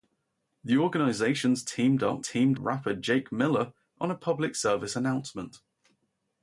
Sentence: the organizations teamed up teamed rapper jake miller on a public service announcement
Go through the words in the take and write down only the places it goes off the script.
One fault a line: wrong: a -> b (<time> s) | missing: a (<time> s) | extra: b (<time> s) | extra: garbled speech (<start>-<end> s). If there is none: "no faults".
no faults